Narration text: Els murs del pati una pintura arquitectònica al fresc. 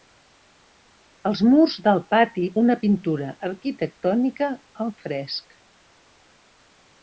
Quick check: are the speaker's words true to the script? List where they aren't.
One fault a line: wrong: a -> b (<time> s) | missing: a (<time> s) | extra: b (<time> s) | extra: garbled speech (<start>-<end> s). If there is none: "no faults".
no faults